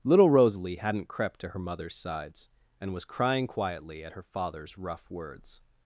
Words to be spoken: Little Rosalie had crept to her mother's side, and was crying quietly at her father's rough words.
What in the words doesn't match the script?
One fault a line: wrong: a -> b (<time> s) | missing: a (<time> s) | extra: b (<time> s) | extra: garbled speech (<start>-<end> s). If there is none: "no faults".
wrong: had -> hadn't (0.8 s)
wrong: side -> sides (1.9 s)